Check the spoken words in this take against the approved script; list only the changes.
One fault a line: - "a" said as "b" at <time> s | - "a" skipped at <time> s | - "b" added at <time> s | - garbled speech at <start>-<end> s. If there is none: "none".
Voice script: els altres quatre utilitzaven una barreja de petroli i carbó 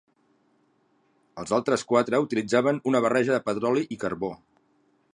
none